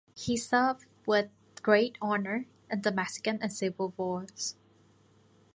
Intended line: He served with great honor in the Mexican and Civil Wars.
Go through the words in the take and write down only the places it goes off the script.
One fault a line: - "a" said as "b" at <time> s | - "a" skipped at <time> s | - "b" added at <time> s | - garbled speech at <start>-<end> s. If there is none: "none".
none